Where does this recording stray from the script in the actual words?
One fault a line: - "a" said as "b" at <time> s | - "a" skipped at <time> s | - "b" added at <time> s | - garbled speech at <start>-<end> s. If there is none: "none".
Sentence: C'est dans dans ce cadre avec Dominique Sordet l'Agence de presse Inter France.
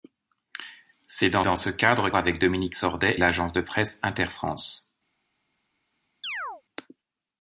none